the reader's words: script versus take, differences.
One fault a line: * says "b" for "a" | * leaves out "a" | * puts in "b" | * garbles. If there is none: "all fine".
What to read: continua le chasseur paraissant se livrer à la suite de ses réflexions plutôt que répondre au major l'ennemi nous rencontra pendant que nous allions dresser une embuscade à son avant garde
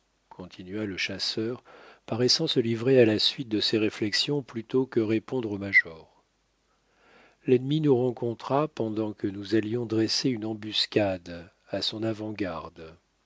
all fine